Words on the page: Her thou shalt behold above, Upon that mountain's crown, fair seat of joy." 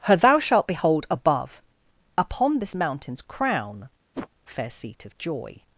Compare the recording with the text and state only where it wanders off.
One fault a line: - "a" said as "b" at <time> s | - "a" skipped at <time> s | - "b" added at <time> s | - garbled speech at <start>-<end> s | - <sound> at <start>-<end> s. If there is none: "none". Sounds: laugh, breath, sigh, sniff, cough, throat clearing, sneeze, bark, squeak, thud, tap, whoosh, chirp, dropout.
- "that" said as "this" at 2.6 s
- whoosh at 4.1-4.3 s